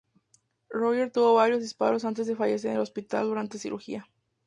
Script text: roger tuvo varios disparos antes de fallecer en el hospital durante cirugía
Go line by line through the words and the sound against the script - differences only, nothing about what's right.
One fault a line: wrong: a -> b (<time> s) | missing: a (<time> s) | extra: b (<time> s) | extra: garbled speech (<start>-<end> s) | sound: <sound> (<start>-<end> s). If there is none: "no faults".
no faults